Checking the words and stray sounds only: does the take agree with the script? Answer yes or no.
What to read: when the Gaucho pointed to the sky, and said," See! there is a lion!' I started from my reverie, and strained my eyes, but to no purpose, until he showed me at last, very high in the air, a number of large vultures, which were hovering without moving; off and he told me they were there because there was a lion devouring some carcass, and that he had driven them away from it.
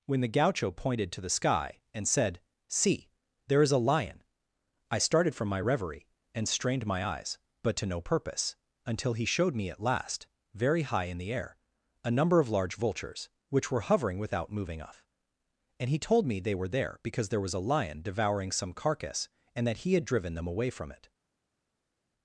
yes